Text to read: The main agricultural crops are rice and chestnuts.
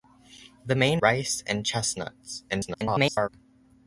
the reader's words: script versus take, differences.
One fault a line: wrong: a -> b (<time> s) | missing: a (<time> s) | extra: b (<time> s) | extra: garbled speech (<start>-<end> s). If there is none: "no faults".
missing: agricultural crops are (1.0 s)
extra: garbled speech (2.5-3.3 s)